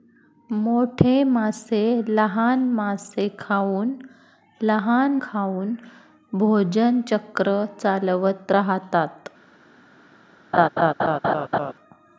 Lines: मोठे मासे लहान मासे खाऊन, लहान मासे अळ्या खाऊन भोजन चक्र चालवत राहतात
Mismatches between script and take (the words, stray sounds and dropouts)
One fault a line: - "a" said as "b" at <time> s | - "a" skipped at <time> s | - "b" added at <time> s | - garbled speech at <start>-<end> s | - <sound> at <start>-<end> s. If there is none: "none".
- "मासे अळ्या" skipped at 5.2 s
- laugh at 10.5-11.7 s